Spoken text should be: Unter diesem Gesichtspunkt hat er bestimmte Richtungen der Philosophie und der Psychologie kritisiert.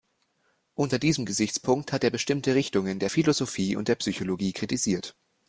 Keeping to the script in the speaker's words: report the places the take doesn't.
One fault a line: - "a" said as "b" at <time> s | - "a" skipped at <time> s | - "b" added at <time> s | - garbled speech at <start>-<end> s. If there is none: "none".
none